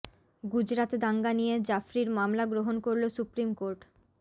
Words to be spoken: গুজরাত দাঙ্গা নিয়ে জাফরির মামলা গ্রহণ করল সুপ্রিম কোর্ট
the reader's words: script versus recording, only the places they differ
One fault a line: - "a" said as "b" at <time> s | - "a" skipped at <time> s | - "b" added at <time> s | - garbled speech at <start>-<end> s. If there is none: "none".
none